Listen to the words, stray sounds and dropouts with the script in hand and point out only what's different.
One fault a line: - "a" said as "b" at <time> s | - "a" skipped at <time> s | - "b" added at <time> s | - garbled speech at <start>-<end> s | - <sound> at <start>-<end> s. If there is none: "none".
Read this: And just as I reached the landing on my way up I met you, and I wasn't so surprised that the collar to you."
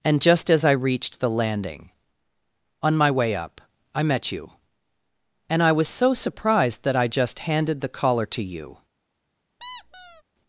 - "wasn't" said as "was" at 5.7 s
- "I just handed" added at 7.0 s
- squeak at 9.6-10.2 s